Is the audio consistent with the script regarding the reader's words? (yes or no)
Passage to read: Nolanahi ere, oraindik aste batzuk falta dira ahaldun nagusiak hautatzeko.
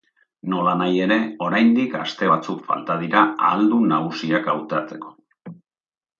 yes